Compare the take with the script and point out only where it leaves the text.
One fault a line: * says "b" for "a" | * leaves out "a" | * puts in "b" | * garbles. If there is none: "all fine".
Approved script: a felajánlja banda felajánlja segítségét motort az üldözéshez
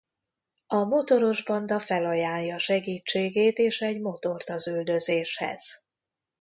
* says "motoros" for "felajánlja"
* puts in "és egy"